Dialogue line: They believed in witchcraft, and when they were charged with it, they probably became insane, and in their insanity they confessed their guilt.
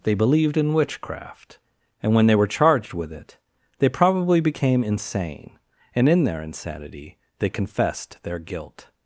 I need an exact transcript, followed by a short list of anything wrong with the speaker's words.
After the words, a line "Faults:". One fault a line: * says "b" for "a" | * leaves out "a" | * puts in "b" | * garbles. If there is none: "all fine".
They believed in witchcraft, and when they were charged with it, they probably became insane, and in their insanity they confessed their guilt.
Faults:
all fine